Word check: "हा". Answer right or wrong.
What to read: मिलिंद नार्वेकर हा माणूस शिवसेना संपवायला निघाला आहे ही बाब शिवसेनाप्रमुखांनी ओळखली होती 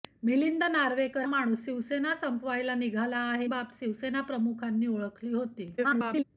wrong